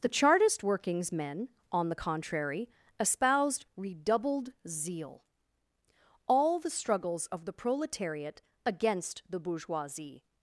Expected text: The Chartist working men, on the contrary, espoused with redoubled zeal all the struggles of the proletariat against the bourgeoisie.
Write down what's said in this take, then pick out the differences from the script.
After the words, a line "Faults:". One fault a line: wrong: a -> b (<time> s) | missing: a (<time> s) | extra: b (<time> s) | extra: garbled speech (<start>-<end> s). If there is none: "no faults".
The Chartist workings men, on the contrary, espoused redoubled zeal all the struggles of the proletariat against the bourgeoisie.
Faults:
wrong: working -> workings (0.6 s)
missing: with (3.7 s)